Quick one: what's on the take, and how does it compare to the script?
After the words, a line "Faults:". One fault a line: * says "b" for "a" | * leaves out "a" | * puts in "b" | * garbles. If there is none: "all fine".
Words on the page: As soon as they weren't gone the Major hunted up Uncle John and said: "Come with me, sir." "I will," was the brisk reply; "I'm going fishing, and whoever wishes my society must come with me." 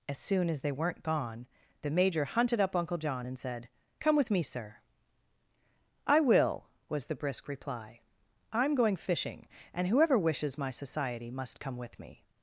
As soon as they weren't gone the Major hunted up Uncle John and said: "Come with me, sir." "I will," was the brisk reply; "I'm going fishing, and whoever wishes my society must come with me."
Faults:
all fine